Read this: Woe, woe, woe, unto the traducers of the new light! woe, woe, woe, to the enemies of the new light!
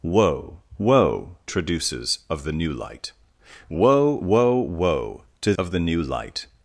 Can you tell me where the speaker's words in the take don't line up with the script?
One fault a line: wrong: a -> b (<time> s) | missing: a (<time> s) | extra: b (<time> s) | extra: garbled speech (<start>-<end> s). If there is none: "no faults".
missing: woe unto the (1.4 s)
missing: the enemies (5.5 s)